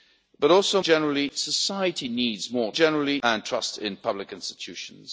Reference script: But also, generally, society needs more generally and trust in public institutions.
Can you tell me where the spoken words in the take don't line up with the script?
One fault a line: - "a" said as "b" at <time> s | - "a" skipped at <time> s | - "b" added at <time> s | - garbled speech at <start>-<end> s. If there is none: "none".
none